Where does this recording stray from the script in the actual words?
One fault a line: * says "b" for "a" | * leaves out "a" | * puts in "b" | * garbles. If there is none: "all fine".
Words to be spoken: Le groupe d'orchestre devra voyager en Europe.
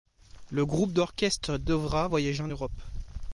all fine